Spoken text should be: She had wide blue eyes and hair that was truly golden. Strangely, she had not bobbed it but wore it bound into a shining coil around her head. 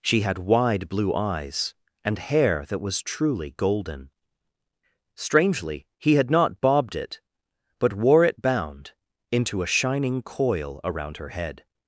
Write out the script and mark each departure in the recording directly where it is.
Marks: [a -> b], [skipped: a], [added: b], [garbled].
She had wide blue eyes and hair that was truly golden. Strangely, [she -> he] had not bobbed it but wore it bound into a shining coil around her head.